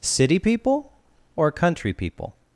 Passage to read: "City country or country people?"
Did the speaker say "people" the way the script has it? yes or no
yes